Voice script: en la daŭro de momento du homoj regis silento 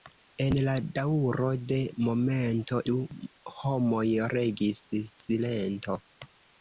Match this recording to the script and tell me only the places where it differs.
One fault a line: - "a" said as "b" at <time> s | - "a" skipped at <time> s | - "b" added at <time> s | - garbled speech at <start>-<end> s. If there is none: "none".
none